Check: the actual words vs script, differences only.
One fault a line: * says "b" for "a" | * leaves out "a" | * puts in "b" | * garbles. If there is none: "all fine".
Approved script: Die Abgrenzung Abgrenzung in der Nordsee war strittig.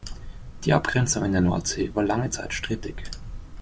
* leaves out "Abgrenzung"
* puts in "lange Zeit"